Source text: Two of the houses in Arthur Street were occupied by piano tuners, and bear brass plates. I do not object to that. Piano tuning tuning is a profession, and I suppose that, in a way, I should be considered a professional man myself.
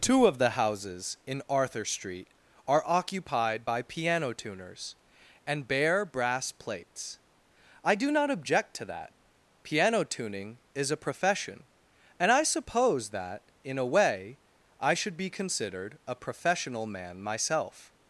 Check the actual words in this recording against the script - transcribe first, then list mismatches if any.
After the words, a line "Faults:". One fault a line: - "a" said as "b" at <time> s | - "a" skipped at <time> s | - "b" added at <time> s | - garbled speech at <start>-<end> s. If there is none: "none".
Two of the houses in Arthur Street are occupied by piano tuners, and bear brass plates. I do not object to that. Piano tuning is a profession, and I suppose that, in a way, I should be considered a professional man myself.
Faults:
- "were" said as "are" at 2.7 s
- "tuning" skipped at 10.6 s